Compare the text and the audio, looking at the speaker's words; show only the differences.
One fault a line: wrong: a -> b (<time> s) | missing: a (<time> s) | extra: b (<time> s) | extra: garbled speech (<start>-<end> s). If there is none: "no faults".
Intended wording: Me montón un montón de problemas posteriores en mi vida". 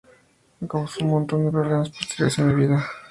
wrong: montón -> causó (0.6 s)